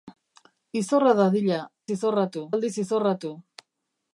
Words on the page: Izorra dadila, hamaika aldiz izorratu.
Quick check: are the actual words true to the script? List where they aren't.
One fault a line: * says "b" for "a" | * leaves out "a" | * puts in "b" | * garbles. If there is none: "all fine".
* says "izorratu" for "hamaika"